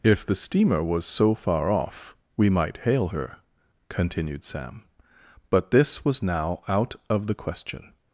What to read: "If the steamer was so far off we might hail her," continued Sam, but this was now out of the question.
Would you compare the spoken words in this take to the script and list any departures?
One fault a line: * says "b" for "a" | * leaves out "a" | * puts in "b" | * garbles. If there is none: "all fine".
all fine